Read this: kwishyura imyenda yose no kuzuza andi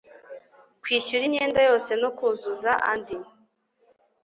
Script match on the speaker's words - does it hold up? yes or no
yes